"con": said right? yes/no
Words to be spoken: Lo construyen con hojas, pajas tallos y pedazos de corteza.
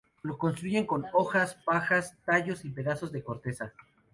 yes